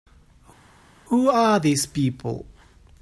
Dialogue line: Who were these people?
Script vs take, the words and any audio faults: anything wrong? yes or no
yes